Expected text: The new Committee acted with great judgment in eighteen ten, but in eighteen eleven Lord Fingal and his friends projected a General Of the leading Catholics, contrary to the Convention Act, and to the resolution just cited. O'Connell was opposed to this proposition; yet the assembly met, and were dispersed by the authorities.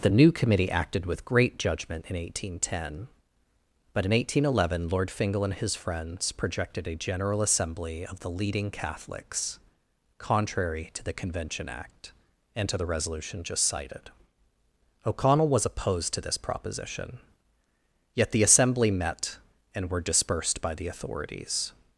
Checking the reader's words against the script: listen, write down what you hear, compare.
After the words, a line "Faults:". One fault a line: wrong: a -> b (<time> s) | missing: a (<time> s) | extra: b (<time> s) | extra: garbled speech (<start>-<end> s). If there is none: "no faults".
The new Committee acted with great judgment in eighteen ten, but in eighteen eleven Lord Fingal and his friends projected a General Assembly of the leading Catholics, contrary to the Convention Act, and to the resolution just cited. O'Connell was opposed to this proposition; yet the assembly met, and were dispersed by the authorities.
Faults:
extra: Assembly (7.4 s)